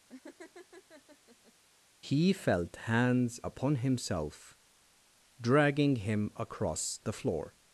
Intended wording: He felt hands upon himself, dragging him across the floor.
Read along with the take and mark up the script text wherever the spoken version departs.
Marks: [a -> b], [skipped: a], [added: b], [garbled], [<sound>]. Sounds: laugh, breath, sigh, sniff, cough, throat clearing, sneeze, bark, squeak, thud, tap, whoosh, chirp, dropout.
[laugh] He felt hands upon himself, dragging him across the floor.